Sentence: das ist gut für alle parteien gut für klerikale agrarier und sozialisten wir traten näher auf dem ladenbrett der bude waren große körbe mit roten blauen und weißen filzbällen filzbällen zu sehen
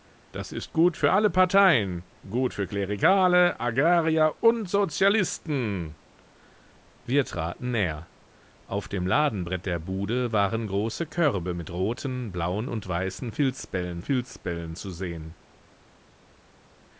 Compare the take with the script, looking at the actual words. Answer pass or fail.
pass